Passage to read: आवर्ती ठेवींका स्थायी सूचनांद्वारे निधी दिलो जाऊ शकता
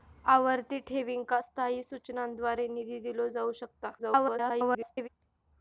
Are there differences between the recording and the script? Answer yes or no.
yes